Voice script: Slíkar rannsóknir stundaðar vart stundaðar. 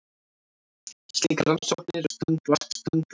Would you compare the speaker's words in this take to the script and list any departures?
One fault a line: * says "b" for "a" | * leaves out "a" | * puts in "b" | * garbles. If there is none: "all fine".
all fine